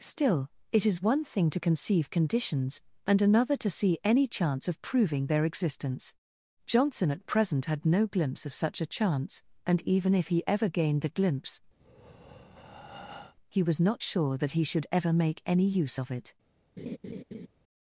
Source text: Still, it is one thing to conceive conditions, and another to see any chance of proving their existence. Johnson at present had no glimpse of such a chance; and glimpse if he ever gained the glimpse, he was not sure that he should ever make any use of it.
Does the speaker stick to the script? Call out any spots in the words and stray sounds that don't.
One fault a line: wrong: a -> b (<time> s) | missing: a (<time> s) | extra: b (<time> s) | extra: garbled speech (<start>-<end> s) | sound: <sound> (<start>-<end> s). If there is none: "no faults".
wrong: glimpse -> even (9.8 s)
sound: breath (11.8-13.4 s)
sound: laugh (16.8-17.5 s)